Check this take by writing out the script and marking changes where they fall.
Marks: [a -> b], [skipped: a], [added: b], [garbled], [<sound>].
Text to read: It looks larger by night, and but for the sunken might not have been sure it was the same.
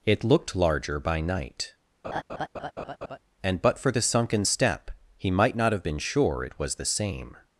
It [looks -> looked] larger by night, [laugh] and but for the sunken [added: step he] might not have been sure it was the same.